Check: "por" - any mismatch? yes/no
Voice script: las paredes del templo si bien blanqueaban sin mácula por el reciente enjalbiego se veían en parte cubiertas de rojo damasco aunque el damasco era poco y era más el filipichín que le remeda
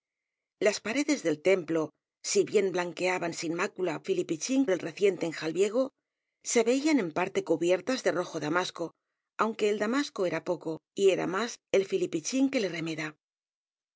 yes